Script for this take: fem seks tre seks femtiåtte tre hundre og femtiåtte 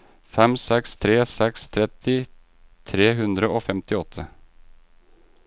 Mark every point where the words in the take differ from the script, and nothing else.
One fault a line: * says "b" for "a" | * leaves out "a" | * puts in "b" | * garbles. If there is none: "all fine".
* says "tretti" for "femtiåtte"